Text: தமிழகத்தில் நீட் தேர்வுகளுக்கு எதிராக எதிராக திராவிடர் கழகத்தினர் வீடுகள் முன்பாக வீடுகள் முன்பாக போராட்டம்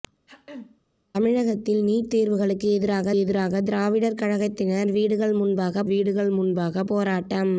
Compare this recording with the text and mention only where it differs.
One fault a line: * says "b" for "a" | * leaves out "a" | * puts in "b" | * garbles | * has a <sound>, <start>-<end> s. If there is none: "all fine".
* has a throat clearing, 0.3-0.8 s